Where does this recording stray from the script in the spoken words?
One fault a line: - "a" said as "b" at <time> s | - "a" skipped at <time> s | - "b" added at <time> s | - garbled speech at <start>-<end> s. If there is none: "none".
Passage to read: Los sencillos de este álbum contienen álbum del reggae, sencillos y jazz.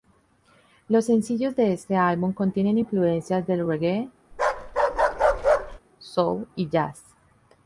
- "álbum" said as "influencias" at 2.8 s
- "sencillos" said as "soul" at 6.0 s